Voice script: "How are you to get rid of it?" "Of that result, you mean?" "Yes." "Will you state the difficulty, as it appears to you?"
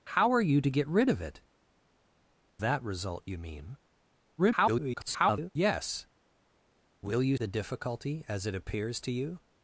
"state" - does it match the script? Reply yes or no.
no